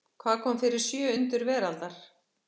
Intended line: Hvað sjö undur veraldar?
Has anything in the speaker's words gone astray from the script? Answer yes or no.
yes